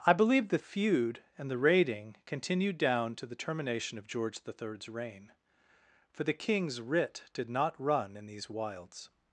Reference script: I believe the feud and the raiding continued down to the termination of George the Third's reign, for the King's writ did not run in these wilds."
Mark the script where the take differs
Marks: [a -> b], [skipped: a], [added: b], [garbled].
I believe the feud and the raiding continued down to the termination of George the Third's reign, for the King's writ did not run in these wilds."